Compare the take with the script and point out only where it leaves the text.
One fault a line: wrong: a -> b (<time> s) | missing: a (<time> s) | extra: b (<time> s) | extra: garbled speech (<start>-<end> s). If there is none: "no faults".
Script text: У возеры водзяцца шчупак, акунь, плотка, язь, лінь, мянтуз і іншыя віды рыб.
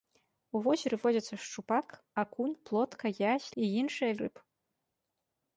missing: лінь мянтуз (3.5 s)
missing: віды (4.1 s)